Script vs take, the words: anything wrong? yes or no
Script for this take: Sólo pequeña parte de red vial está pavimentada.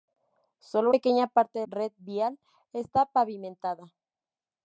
no